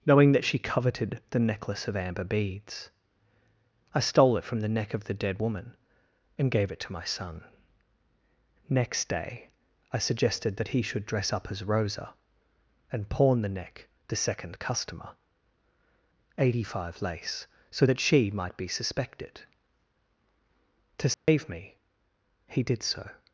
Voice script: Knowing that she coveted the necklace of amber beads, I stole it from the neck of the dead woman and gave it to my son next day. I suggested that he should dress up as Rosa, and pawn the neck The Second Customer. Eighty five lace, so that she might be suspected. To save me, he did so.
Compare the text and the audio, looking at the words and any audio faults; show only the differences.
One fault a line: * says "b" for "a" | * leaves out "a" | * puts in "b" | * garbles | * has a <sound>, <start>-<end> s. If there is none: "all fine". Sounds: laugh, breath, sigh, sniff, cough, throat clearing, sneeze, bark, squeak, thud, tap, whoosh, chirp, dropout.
* has a dropout, 21.1-21.3 s